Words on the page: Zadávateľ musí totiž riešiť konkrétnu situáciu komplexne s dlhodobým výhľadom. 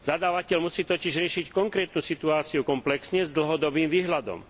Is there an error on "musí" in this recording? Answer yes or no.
no